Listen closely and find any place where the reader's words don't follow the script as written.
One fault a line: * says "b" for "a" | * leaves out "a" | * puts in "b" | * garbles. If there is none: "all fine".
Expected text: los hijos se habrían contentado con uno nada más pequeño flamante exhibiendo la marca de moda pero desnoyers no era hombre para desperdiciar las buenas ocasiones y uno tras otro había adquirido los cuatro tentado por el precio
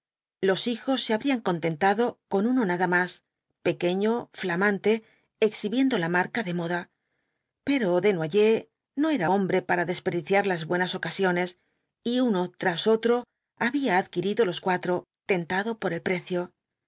all fine